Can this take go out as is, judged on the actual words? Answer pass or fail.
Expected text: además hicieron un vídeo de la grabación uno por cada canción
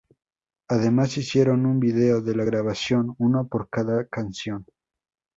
pass